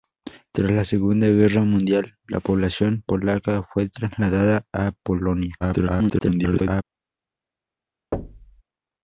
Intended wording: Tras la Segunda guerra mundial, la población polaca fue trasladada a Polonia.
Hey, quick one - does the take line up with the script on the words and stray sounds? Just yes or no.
no